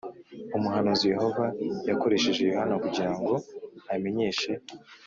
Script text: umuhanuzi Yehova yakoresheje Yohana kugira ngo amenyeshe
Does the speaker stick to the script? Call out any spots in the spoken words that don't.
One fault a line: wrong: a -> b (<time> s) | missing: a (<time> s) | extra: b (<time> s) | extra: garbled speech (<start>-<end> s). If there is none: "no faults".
no faults